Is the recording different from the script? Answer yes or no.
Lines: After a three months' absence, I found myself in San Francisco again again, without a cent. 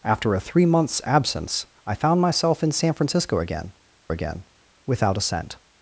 no